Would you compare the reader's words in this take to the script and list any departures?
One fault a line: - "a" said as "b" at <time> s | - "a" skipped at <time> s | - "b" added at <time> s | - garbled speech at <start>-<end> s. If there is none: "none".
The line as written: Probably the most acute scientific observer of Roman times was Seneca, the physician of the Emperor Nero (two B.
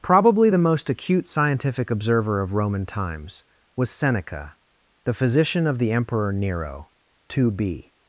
none